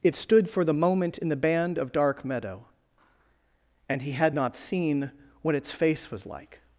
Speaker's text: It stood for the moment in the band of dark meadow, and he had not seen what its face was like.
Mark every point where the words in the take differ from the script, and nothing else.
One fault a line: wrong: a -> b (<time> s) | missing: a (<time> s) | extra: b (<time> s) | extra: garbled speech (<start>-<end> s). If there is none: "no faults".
no faults